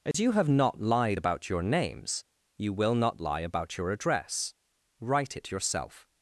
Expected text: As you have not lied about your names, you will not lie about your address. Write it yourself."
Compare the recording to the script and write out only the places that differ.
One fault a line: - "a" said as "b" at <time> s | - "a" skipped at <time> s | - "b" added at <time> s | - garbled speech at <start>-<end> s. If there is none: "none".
none